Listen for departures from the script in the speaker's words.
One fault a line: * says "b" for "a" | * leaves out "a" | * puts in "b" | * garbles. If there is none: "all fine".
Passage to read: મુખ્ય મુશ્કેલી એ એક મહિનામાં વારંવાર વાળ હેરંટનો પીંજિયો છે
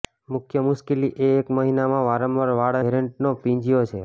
all fine